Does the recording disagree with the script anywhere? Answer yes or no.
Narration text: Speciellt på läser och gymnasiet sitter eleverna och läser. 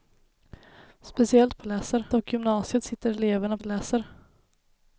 no